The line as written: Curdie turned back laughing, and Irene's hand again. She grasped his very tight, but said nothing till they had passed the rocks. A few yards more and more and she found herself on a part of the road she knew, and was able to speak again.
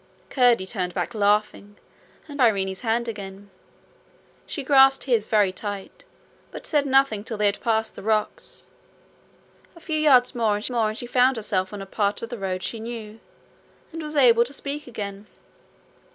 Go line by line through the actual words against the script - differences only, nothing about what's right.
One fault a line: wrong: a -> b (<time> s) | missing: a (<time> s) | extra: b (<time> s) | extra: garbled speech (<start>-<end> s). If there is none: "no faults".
no faults